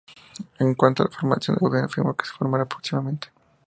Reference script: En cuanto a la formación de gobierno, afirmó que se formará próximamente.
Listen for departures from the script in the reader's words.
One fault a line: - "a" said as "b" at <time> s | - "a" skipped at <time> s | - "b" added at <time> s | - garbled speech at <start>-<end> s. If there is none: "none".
none